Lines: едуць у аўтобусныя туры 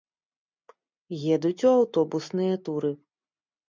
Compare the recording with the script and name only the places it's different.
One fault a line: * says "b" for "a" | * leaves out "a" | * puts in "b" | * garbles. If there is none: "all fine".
all fine